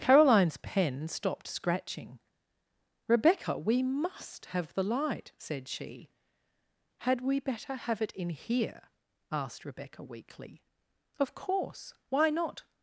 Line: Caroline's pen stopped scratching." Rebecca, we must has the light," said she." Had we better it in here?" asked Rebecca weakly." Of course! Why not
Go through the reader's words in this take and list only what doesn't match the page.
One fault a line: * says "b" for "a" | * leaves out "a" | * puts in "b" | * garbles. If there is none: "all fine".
* says "have" for "has"
* puts in "have"